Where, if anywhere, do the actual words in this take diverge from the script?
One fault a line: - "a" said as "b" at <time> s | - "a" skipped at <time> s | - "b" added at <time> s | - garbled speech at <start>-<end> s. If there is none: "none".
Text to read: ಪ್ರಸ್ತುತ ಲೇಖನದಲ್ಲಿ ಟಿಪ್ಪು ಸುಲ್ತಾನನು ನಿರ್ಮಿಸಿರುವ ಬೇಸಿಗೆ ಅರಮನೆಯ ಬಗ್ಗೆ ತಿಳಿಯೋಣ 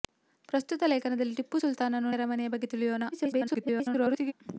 - "ನಿರ್ಮಿಸಿರುವ ಬೇಸಿಗೆ" skipped at 2.1 s
- garbled speech at 3.1-4.3 s